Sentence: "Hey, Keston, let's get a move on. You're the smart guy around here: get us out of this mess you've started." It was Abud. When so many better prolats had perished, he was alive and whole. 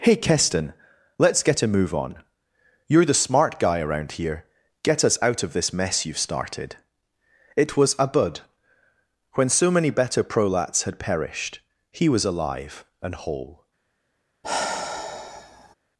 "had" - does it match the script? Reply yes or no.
yes